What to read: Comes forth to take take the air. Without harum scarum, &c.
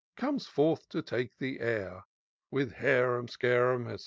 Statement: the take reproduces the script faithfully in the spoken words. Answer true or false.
false